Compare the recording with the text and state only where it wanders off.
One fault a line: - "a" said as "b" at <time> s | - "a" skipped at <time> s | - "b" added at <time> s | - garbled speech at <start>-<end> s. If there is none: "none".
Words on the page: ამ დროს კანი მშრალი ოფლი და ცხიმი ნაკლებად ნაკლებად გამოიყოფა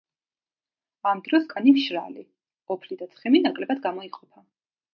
- "ნაკლებად" skipped at 3.8 s